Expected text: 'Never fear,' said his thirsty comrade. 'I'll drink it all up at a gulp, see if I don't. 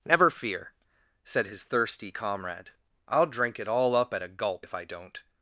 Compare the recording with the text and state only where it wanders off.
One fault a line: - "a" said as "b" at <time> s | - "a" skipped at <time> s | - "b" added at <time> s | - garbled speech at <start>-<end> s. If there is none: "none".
- "see" skipped at 4.7 s